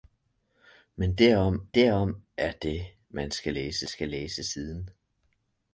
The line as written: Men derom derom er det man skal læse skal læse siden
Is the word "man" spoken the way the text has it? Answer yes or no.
yes